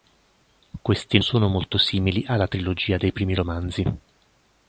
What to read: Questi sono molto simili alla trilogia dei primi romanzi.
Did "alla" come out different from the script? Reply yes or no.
no